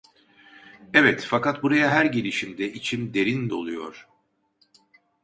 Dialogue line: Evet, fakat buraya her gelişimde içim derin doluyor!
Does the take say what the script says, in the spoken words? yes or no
yes